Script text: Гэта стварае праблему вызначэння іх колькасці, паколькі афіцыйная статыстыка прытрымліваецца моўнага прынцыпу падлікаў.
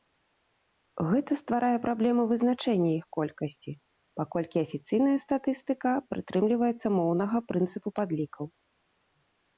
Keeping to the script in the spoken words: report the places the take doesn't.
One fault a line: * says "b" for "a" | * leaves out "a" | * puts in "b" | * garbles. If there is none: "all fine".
all fine